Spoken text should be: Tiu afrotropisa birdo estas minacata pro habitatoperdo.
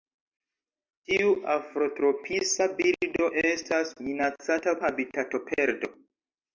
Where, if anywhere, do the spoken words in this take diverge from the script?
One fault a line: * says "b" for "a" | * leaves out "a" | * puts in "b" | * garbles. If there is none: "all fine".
* leaves out "pro"